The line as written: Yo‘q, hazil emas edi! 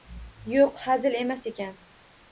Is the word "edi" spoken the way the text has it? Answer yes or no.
no